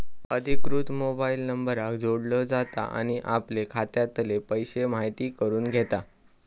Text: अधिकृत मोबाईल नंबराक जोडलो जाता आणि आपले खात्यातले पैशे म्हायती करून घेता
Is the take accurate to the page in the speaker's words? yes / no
yes